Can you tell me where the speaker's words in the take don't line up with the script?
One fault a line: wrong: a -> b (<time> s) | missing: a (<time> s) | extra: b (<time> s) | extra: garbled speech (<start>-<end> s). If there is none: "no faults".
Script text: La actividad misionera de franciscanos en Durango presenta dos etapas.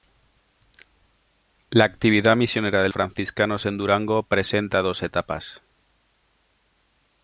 no faults